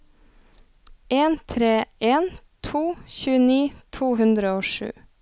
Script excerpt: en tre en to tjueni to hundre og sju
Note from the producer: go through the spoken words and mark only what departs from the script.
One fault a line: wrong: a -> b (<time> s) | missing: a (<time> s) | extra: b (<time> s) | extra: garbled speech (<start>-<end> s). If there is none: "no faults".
no faults